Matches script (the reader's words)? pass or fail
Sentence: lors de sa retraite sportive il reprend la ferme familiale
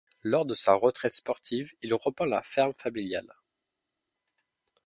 pass